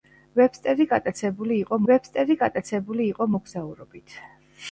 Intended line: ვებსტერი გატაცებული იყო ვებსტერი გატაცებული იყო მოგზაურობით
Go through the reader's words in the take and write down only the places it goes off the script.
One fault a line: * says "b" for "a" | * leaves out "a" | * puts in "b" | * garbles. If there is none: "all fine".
all fine